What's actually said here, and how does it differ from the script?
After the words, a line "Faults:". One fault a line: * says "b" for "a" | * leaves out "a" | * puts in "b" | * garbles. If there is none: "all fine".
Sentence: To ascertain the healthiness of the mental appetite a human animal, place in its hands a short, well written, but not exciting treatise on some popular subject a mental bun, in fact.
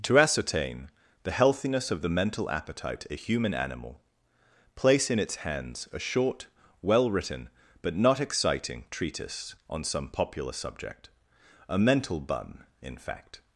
To ascertain the healthiness of the mental appetite a human animal, place in its hands a short, well written, but not exciting treatise on some popular subject a mental bun, in fact.
Faults:
all fine